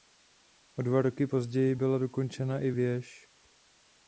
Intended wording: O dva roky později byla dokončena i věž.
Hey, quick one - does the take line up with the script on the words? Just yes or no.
yes